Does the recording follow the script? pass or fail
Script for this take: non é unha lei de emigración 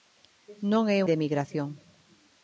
fail